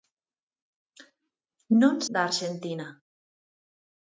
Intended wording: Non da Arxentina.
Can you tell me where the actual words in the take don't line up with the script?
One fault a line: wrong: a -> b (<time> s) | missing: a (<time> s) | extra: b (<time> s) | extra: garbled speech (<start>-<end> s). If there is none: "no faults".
no faults